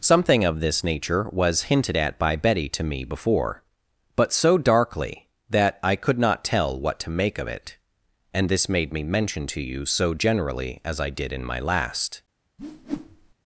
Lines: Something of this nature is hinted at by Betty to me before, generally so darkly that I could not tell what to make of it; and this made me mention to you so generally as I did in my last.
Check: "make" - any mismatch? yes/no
no